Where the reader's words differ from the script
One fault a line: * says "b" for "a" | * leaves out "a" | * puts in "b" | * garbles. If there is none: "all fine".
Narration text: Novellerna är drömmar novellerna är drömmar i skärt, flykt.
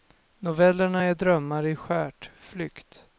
* leaves out "novellerna är drömmar"